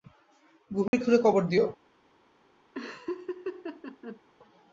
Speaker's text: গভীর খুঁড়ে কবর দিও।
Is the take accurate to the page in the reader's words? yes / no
yes